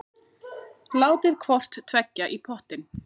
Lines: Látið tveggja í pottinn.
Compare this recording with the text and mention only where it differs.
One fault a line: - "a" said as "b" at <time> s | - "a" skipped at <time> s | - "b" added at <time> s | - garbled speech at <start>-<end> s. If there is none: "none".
- "hvort" added at 1.4 s